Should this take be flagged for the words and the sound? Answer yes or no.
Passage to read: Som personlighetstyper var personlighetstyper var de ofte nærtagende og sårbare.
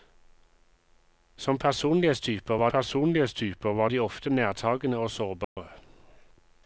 yes